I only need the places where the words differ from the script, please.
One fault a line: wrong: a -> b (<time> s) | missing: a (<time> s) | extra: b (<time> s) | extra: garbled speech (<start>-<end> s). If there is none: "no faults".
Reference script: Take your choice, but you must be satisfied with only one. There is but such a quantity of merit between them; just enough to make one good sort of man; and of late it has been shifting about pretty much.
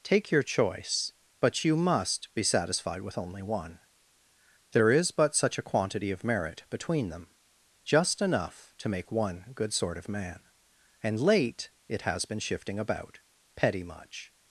missing: of (11.2 s)
wrong: pretty -> petty (13.6 s)